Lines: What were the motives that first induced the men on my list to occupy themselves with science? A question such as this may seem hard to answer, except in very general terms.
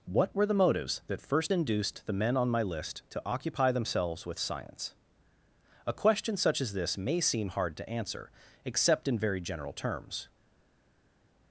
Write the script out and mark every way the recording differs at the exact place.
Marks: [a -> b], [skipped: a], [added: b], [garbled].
What were the motives that first induced the men on my list to occupy themselves with science? A question such as this may seem hard to answer, except in very general terms.